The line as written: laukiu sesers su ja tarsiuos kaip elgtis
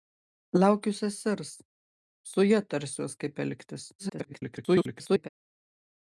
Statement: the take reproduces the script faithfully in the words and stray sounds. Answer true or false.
false